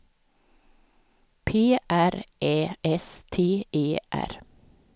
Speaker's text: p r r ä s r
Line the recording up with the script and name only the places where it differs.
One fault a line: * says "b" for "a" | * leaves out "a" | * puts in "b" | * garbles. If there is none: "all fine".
* leaves out "r"
* puts in "t e"